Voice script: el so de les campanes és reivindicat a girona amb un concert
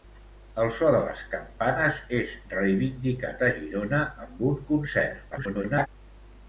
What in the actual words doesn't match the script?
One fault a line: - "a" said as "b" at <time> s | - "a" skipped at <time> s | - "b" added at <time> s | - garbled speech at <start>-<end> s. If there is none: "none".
- garbled speech at 5.3-5.9 s